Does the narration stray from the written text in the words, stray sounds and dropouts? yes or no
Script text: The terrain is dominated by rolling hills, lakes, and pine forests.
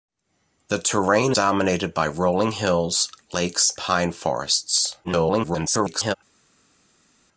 yes